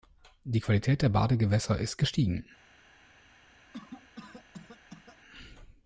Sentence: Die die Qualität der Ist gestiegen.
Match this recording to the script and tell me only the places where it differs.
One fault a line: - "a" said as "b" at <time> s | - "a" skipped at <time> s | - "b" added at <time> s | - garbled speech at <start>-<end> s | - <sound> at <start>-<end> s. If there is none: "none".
- "die" skipped at 0.6 s
- "Badegewässer" added at 1.1 s
- cough at 3.7-5.2 s